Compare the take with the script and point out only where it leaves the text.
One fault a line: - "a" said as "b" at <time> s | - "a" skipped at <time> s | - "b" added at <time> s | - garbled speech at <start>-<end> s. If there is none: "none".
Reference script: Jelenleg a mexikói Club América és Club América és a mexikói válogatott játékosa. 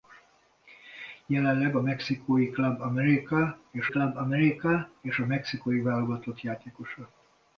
none